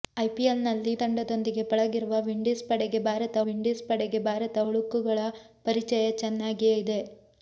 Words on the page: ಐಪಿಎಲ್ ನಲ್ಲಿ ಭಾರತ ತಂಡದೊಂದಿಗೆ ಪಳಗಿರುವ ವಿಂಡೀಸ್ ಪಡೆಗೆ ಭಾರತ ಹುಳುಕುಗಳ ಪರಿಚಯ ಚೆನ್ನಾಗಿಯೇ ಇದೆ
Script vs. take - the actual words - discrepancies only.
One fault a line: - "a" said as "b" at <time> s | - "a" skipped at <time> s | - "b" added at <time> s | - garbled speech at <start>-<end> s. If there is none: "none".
- "ಭಾರತ" skipped at 0.9 s
- "ವಿಂಡೀಸ್ ಪಡೆಗೆ ಭಾರತ" added at 3.4 s